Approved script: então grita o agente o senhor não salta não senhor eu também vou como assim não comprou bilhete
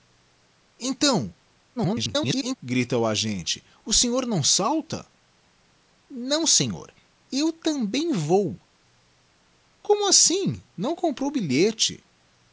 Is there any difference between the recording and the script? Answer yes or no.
yes